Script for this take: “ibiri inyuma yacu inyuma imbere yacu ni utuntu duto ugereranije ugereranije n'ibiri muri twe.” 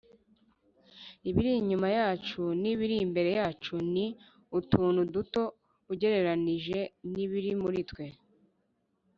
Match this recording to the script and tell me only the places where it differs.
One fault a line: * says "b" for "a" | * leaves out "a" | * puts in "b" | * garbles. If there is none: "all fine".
* says "n'ibiri" for "inyuma"
* leaves out "ugereranije"